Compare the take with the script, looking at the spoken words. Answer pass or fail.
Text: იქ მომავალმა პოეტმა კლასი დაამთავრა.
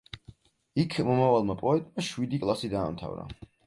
fail